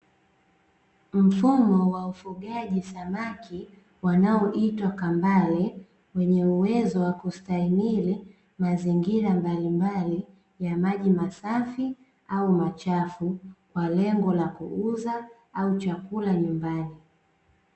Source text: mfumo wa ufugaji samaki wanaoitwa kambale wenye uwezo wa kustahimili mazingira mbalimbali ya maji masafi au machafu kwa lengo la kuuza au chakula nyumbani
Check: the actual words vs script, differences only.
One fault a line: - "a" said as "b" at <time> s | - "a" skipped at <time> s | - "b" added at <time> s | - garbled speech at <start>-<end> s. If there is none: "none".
none